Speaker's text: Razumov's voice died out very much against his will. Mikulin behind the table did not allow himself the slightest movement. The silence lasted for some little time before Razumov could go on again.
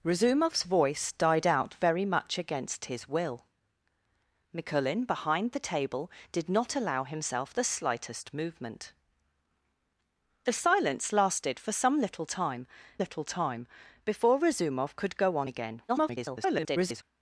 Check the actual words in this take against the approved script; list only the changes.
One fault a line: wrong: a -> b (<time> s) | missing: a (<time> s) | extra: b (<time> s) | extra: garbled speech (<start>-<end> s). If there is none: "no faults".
extra: little time (13.0 s)
extra: garbled speech (15.9-17.0 s)